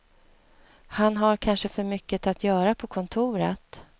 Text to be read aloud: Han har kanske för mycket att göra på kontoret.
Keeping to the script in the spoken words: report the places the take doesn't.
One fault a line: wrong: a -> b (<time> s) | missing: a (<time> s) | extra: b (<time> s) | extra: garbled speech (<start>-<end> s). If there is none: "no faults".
no faults